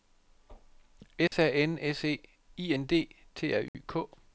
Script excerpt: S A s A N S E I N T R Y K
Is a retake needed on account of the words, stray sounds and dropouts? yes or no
yes